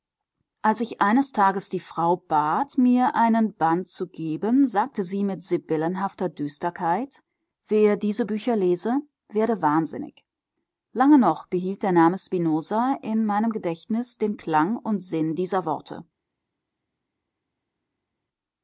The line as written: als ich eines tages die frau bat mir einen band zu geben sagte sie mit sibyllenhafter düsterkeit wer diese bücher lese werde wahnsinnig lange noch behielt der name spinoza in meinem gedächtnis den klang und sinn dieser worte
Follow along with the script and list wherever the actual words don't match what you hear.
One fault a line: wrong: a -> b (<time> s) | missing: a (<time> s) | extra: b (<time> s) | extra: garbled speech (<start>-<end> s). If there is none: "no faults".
no faults